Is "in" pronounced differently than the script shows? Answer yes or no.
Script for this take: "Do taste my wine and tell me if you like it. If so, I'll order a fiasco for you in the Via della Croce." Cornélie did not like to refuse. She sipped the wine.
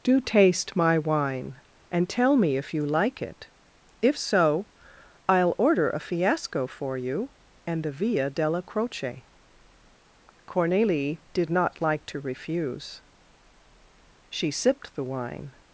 yes